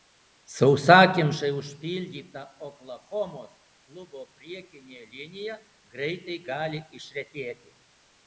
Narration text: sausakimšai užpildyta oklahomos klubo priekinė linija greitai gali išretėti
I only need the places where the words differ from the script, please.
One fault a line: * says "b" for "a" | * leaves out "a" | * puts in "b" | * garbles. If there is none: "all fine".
all fine